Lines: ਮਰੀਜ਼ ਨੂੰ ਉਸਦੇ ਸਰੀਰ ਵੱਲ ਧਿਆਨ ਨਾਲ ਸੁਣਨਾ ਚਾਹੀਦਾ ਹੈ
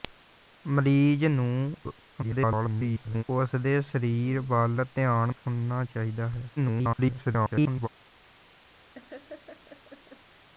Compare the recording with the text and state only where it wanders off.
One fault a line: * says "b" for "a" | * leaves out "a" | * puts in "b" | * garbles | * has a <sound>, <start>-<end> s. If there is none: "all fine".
* garbles
* leaves out "ਨਾਲ"
* garbles
* has a laugh, 8.9-10.5 s